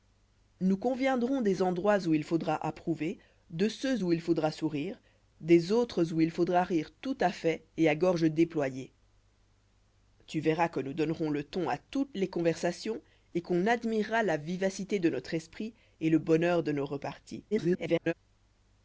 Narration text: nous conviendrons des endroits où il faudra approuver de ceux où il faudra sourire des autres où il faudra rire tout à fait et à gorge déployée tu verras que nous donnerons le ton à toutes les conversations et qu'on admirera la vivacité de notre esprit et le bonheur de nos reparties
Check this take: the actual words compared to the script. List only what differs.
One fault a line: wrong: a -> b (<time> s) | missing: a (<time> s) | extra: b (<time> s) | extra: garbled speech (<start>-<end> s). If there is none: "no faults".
extra: garbled speech (17.5-18.1 s)